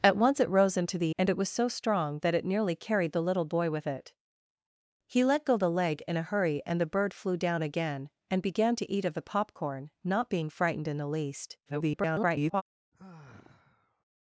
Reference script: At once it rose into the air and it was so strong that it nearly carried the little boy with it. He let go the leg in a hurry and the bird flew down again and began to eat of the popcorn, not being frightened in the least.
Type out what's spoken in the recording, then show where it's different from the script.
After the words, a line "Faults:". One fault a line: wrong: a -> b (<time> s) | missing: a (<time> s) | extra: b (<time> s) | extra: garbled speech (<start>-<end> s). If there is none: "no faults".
At once it rose into the and it was so strong that it nearly carried the little boy with it. He let go the leg in a hurry and the bird flew down again and began to eat of the popcorn, not being frightened in the least. [garbled]
Faults:
missing: air (1.1 s)
extra: garbled speech (11.7-12.6 s)